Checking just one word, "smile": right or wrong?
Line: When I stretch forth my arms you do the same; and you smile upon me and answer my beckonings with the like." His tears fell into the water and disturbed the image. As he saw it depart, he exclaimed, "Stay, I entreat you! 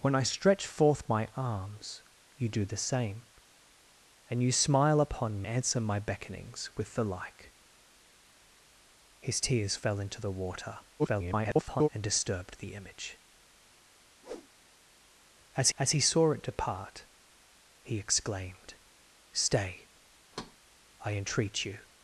right